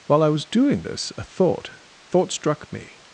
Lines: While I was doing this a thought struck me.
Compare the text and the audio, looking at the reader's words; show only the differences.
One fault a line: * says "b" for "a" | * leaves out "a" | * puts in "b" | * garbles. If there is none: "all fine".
* puts in "thought"